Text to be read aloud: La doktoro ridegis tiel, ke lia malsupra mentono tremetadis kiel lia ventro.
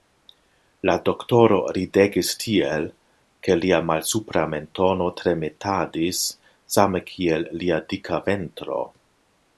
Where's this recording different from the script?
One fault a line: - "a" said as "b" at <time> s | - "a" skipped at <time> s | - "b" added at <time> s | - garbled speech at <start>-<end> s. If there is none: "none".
- "same" added at 6.8 s
- "dika" added at 7.9 s